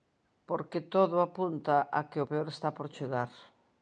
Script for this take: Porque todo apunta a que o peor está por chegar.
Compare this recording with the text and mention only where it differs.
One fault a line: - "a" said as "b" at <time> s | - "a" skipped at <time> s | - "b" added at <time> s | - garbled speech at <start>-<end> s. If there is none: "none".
none